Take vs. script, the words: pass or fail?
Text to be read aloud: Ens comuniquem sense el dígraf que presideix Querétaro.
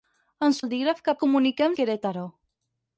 fail